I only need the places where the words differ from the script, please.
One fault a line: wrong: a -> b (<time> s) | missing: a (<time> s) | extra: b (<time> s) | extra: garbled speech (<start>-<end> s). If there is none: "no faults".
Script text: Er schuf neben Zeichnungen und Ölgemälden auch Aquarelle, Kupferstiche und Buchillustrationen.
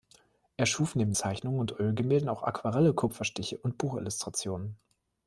no faults